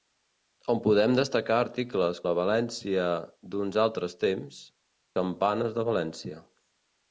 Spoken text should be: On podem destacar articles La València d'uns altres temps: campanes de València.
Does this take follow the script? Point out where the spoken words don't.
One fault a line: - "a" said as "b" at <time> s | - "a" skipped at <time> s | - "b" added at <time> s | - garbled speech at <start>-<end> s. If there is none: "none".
none